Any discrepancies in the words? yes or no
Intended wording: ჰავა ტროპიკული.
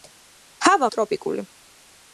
no